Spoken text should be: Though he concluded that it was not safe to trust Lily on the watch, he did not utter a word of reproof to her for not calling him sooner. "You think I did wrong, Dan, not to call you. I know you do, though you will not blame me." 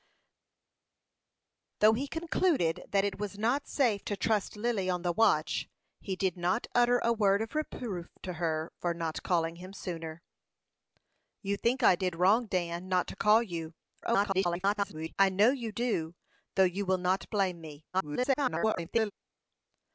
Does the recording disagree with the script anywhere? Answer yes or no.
yes